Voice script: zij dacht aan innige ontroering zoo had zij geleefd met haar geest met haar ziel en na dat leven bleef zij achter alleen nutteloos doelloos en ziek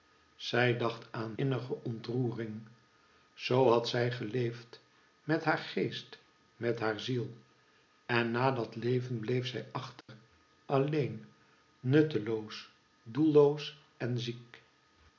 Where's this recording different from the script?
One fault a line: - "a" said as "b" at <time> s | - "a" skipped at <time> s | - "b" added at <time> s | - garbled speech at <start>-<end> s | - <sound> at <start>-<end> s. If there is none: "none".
- dropout at 10.0-10.1 s